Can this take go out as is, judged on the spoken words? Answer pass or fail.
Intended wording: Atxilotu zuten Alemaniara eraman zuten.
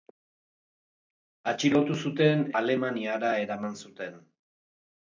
pass